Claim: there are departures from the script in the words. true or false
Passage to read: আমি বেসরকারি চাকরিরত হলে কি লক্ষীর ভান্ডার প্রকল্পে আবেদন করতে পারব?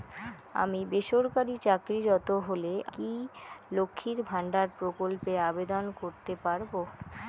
false